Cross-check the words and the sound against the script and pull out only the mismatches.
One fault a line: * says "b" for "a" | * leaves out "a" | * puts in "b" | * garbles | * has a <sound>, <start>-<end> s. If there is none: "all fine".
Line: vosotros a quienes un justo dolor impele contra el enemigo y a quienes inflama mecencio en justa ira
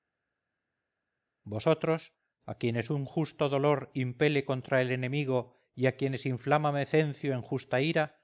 all fine